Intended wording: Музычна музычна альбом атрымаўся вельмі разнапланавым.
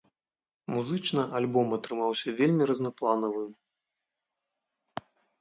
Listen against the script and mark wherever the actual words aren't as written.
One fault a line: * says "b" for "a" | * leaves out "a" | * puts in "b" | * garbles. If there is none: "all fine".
* leaves out "музычна"